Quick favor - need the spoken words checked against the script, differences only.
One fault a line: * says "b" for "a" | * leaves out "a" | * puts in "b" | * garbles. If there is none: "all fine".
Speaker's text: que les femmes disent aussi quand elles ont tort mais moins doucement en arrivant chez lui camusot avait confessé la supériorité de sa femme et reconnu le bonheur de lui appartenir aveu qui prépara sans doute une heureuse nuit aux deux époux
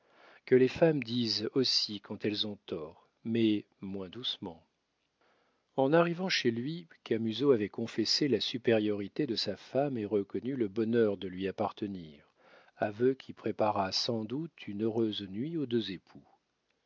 all fine